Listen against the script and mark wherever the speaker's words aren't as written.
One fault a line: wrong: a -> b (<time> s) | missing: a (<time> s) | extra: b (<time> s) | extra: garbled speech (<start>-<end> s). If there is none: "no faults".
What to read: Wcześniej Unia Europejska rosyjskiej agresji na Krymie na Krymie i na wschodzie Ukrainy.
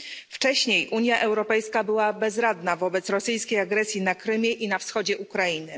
extra: była bezradna wobec (1.8 s)
missing: na Krymie (4.5 s)